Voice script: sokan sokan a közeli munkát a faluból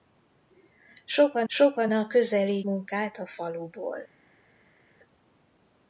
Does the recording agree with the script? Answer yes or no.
yes